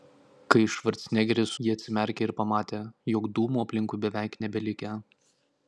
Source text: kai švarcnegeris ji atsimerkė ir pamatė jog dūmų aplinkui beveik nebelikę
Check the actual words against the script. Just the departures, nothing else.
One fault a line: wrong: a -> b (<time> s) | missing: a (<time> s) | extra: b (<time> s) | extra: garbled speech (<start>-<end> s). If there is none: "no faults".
no faults